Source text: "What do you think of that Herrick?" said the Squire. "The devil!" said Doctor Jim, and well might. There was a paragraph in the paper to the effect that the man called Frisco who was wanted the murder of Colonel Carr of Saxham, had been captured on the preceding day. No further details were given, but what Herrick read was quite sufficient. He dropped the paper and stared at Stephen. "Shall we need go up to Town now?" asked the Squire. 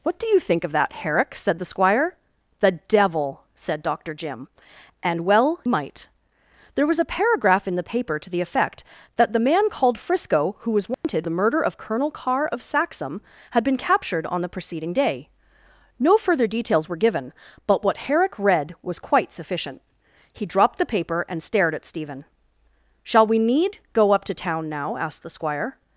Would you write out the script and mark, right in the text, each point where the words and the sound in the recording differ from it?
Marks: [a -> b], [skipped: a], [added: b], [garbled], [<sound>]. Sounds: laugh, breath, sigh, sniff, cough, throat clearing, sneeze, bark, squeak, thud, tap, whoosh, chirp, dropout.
"What do you think of that Herrick?" said the Squire. "The devil!" said Doctor Jim, and well might. There was a paragraph in the paper to the effect that the man called Frisco who was wanted [dropout] the murder of Colonel Carr of Saxham, had been captured on the preceding day. No further details were given, but what Herrick read was quite sufficient. He dropped the paper and stared at Stephen. "Shall we need go up to Town now?" asked the Squire.